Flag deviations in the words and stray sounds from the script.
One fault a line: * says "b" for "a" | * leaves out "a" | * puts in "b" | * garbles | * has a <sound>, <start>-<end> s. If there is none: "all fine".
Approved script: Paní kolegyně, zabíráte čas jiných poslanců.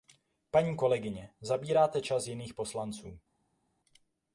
all fine